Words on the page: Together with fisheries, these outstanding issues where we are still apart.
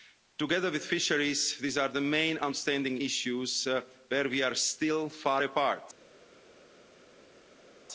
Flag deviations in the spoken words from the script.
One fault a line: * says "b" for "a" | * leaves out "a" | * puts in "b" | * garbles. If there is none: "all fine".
* puts in "are the main"
* puts in "far"